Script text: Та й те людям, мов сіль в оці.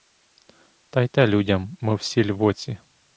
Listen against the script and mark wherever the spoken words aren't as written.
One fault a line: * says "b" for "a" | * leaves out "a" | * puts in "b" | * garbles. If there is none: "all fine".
all fine